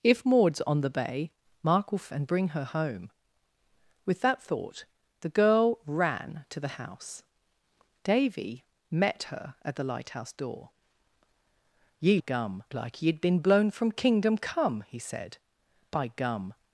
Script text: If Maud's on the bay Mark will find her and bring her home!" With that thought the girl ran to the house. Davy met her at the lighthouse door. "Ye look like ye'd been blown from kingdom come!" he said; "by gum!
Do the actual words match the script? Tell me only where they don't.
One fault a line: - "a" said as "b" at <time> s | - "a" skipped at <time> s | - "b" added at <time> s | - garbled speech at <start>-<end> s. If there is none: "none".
- "find her" skipped at 2.1 s
- "look" said as "gum" at 12.2 s